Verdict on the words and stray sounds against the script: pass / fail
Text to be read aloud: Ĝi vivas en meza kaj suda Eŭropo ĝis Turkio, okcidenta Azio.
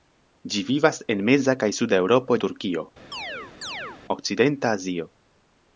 fail